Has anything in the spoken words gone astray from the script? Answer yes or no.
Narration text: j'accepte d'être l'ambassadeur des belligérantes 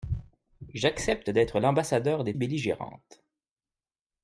no